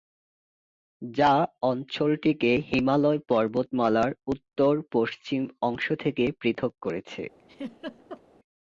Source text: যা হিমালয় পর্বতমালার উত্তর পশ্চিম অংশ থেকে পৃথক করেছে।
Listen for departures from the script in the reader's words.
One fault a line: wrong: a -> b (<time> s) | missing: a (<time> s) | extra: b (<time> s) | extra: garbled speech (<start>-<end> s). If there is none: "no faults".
extra: অঞ্চলটিকে (1.6 s)